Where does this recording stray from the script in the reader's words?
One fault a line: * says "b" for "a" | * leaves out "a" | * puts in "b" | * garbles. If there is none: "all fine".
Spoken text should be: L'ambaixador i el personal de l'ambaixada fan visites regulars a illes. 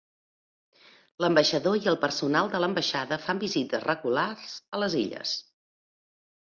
* puts in "les"